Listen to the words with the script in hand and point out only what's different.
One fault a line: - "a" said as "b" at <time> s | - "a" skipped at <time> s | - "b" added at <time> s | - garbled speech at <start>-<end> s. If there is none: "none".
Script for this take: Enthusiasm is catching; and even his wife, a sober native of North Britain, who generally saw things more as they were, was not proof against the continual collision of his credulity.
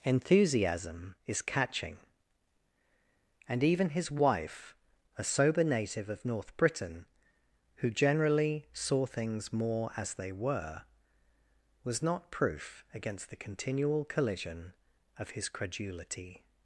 none